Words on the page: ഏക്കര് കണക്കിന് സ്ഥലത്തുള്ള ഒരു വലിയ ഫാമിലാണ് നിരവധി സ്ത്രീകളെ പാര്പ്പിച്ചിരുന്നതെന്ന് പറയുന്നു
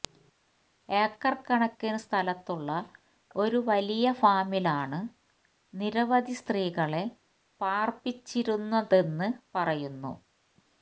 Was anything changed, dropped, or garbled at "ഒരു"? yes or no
no